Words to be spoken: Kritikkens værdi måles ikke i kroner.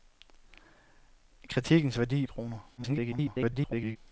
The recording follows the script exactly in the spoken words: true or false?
false